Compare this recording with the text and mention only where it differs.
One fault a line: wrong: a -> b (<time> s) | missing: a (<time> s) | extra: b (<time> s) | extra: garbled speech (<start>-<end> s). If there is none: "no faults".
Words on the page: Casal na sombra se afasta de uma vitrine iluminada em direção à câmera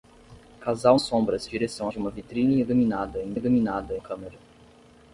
missing: na (1.0 s)
wrong: afasta -> direção (1.4 s)
wrong: direção -> iluminada (3.3 s)